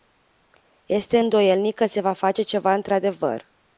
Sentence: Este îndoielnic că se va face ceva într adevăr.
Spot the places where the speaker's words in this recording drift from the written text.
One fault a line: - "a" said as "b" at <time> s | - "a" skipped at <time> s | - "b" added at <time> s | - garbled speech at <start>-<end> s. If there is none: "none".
none